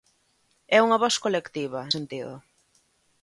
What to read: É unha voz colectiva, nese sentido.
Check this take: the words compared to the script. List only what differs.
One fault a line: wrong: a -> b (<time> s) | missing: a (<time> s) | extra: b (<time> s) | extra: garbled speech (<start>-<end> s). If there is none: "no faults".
missing: nese (1.8 s)